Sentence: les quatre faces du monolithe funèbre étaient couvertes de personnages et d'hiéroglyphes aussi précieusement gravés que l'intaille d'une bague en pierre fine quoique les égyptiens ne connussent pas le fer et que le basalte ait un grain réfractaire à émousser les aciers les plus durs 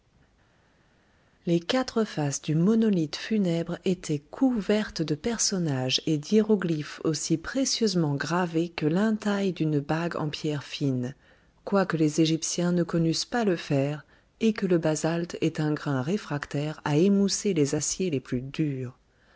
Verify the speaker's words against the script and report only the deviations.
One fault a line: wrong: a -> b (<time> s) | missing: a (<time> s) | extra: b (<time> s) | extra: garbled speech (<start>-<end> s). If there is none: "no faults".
no faults